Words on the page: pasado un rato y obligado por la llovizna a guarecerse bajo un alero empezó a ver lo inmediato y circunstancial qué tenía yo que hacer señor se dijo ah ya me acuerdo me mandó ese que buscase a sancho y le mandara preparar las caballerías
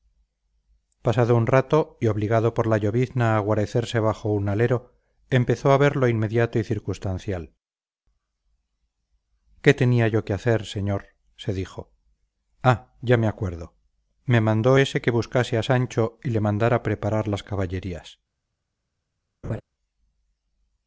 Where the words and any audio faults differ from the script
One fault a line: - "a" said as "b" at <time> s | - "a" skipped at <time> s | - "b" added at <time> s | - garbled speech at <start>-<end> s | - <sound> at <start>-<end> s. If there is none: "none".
- laugh at 19.4-19.6 s